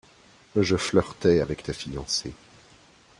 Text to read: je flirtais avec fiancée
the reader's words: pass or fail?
fail